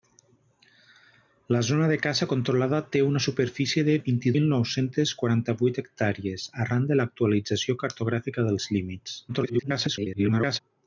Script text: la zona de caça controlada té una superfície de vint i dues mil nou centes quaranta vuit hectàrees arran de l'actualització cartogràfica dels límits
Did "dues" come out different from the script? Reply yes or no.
yes